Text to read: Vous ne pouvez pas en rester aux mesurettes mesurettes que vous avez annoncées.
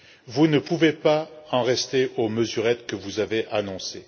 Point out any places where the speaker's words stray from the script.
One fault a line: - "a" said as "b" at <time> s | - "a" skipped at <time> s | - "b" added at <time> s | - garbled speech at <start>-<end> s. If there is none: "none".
- "mesurettes" skipped at 2.8 s